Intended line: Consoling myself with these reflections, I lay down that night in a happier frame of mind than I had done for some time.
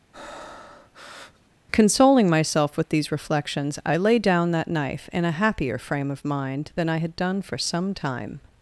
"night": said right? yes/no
no